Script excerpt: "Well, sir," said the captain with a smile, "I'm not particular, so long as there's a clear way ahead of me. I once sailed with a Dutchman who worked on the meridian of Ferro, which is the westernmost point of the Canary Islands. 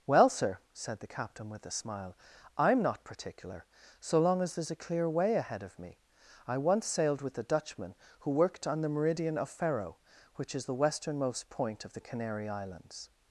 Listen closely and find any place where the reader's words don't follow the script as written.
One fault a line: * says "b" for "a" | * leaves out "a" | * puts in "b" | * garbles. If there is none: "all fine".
all fine